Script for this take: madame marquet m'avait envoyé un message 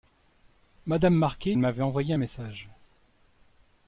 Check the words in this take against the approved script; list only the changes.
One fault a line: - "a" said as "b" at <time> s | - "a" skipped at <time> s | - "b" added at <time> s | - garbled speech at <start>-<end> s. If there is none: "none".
none